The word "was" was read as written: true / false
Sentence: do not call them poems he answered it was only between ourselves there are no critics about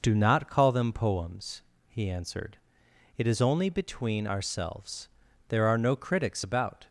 false